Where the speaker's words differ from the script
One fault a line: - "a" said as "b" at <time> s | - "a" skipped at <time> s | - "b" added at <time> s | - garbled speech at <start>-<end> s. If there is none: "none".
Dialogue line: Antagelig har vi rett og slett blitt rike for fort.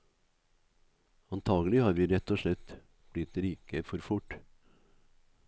none